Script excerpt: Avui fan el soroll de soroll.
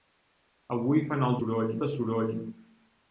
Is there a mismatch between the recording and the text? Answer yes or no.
no